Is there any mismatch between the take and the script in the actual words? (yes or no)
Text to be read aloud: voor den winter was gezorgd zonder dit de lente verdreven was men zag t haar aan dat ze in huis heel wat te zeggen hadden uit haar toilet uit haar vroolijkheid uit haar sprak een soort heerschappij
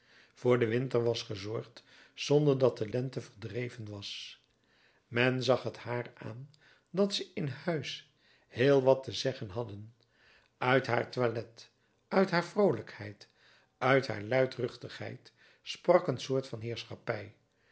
yes